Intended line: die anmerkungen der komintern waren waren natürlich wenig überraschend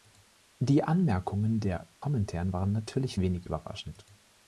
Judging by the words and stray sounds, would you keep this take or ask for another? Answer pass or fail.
fail